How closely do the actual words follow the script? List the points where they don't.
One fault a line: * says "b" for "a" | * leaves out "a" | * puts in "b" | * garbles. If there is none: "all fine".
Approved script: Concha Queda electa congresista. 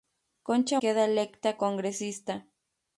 all fine